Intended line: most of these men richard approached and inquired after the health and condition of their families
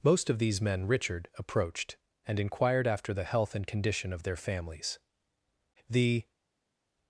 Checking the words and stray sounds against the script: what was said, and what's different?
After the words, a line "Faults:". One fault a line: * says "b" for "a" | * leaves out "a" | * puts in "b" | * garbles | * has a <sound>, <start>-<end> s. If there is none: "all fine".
most of these men richard approached and inquired after the health and condition of their families the
Faults:
* puts in "the"